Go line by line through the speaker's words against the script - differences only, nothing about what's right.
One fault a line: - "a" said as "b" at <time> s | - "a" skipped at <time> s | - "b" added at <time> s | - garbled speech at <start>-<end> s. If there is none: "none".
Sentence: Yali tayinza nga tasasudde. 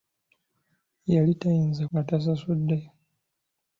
none